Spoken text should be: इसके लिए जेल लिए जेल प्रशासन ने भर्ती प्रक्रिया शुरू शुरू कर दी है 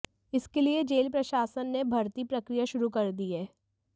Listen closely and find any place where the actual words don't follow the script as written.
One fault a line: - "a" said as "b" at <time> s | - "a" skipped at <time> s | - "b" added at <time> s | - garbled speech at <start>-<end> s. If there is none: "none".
- "लिए जेल" skipped at 1.1 s
- "शुरू" skipped at 2.9 s